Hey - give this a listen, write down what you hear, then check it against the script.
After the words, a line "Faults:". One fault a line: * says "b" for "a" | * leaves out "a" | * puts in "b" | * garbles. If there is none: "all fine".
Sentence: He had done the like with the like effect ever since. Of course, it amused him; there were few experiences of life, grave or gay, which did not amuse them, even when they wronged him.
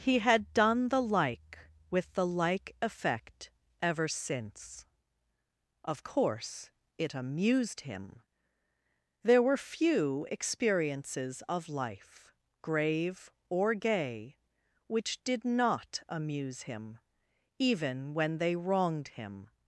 He had done the like with the like effect ever since. Of course, it amused him; there were few experiences of life, grave or gay, which did not amuse him, even when they wronged him.
Faults:
* says "him" for "them"